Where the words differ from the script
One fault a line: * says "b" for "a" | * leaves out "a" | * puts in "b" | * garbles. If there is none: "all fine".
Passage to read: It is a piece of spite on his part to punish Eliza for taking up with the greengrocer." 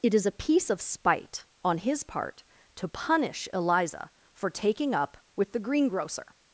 all fine